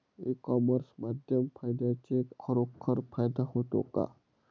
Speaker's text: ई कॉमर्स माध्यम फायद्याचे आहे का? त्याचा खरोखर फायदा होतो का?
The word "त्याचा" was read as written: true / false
false